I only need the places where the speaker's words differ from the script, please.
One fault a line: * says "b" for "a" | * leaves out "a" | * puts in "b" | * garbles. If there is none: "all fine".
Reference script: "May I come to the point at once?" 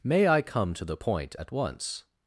all fine